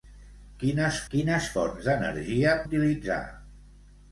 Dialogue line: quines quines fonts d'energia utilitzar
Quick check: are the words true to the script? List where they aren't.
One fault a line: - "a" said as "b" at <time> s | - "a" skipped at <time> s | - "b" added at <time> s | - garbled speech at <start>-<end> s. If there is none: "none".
none